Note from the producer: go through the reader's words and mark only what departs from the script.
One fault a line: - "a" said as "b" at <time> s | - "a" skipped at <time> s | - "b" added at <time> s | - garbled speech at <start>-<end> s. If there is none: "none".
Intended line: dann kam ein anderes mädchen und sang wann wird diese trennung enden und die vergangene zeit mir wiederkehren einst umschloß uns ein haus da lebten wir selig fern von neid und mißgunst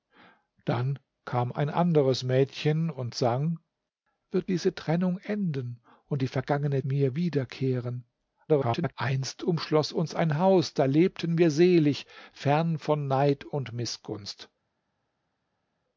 - "wann" skipped at 3.6 s
- "zeit" skipped at 6.8 s
- garbled speech at 8.5-8.9 s